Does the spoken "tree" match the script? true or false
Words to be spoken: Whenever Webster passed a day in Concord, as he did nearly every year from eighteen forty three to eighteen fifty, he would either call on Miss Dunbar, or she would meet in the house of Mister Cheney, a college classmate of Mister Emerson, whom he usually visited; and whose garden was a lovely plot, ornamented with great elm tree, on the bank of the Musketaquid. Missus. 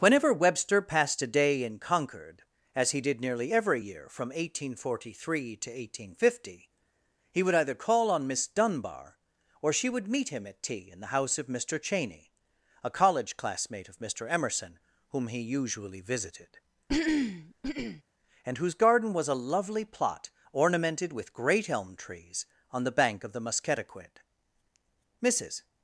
false